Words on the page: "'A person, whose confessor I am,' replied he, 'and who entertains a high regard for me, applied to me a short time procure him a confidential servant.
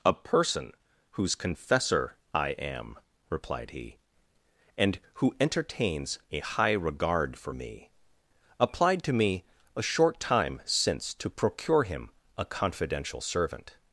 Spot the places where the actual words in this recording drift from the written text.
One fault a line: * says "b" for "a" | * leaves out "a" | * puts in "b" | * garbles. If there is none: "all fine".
* puts in "since to"